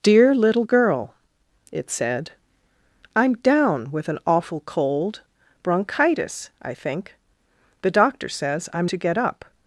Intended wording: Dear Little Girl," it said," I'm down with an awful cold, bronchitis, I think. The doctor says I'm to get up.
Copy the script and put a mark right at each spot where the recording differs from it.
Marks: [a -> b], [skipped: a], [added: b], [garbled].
Dear Little Girl," it said," I'm down with an awful cold, bronchitis, I think. The doctor says I'm to get up.